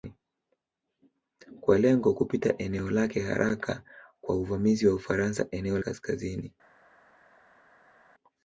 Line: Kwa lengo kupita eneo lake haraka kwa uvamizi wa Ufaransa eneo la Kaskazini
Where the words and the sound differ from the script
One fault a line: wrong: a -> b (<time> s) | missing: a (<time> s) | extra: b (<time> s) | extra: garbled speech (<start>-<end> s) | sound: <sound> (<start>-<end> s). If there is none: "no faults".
missing: la (5.8 s)